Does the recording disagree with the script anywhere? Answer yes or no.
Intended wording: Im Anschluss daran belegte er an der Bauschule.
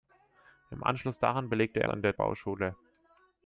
no